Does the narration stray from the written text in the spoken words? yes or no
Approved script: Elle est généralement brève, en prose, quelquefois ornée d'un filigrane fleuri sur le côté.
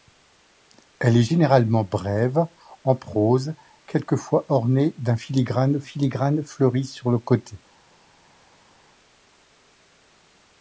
yes